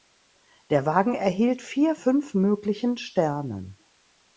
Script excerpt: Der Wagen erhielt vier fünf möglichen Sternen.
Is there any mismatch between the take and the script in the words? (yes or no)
no